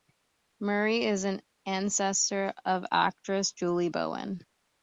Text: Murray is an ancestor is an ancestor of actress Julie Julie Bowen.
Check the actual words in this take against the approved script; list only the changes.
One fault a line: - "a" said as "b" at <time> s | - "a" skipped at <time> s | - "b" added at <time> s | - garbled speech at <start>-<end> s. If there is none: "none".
- "is an ancestor" skipped at 2.5 s
- "Julie" skipped at 3.9 s